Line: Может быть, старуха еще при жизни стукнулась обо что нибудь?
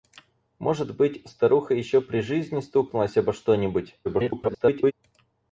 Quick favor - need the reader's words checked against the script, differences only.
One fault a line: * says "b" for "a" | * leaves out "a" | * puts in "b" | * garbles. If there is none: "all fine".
* garbles